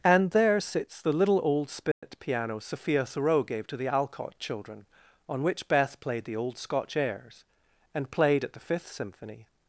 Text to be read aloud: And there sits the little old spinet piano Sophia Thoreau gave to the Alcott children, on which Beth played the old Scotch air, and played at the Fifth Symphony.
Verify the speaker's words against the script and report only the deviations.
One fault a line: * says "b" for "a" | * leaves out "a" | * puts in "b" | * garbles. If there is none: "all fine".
* says "airs" for "air"